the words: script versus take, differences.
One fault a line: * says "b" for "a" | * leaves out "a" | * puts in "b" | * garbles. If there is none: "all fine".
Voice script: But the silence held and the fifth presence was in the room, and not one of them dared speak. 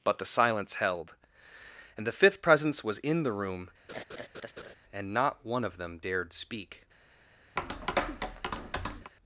all fine